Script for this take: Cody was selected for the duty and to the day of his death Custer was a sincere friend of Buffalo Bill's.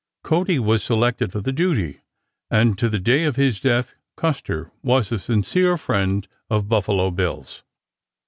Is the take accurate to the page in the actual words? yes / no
yes